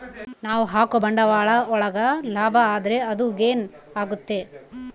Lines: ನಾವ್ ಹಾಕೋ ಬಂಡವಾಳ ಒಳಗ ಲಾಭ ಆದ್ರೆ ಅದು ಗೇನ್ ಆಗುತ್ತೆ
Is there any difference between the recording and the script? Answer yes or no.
no